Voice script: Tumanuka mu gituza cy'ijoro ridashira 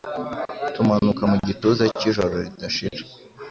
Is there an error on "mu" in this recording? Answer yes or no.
no